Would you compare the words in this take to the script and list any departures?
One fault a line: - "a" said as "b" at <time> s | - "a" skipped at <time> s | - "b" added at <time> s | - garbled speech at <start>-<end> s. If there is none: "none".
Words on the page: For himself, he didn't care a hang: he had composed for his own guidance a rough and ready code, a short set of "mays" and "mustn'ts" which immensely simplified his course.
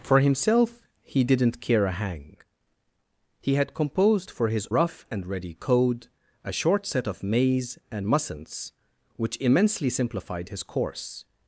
- "own guidance a" skipped at 4.7 s